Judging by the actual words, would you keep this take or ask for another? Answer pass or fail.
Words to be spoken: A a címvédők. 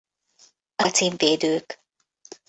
pass